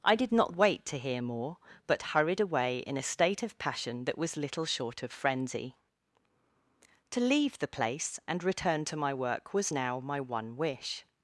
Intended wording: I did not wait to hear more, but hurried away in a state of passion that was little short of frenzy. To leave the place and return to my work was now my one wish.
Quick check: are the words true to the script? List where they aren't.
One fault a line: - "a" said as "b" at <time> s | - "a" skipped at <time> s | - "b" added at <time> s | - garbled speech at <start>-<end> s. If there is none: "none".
none